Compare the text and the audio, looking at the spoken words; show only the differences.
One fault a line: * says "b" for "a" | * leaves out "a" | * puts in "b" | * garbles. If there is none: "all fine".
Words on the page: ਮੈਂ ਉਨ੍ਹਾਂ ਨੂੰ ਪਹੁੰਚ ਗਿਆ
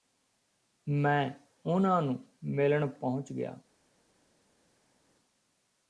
* puts in "ਮਿਲਣ"